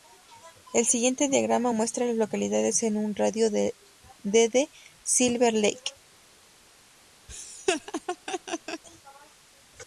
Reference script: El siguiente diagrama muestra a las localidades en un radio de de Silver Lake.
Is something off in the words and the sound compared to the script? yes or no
yes